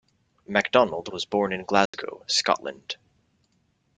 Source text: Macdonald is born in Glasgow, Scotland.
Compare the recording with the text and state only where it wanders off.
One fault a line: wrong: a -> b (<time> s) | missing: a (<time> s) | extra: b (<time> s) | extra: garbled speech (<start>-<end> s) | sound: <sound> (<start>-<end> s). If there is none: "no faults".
wrong: is -> was (1.1 s)
sound: dropout (1.9-1.9 s)